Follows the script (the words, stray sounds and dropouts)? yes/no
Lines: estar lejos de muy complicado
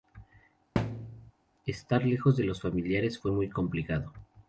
no